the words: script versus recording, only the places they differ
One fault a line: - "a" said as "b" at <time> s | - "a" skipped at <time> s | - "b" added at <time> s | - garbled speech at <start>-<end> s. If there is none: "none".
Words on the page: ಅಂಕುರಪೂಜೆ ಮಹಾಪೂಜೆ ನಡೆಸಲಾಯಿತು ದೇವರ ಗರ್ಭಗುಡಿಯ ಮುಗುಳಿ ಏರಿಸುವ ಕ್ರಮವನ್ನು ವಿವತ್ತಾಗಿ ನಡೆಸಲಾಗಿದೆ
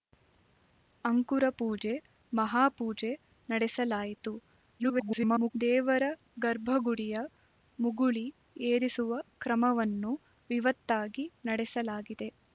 - garbled speech at 4.8-5.5 s